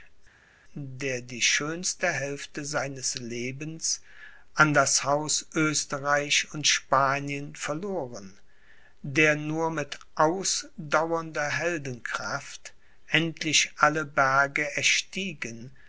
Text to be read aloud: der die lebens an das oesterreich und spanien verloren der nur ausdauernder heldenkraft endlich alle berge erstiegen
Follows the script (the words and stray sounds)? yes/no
no